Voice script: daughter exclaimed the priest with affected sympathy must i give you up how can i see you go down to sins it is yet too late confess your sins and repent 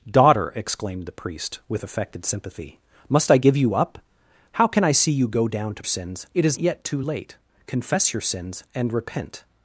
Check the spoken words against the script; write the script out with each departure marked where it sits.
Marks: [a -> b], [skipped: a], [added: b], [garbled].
daughter exclaimed the priest with affected sympathy must i give you up how can i see you go down to sins it is yet too late confess your sins and repent